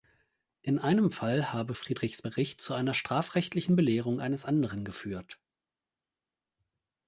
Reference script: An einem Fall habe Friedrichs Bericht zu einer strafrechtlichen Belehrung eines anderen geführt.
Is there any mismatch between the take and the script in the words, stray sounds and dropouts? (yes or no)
yes